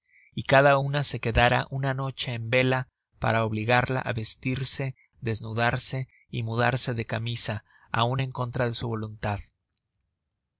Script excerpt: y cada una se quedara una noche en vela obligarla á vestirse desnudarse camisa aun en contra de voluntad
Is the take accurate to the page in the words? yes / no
no